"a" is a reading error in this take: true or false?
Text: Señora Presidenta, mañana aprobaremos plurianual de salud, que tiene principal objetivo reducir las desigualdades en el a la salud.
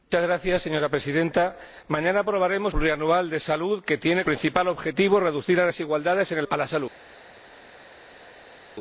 false